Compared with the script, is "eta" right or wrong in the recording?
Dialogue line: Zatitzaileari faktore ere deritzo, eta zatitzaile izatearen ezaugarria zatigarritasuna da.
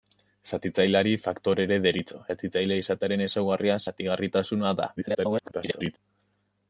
wrong